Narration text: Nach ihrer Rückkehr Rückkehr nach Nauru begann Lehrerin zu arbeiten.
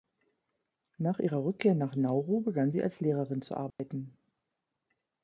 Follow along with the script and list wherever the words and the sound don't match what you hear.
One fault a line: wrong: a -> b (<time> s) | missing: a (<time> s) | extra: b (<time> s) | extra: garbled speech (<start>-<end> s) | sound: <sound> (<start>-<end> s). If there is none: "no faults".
missing: Rückkehr (1.8 s)
extra: sie als (2.7 s)
sound: dropout (3.7-3.8 s)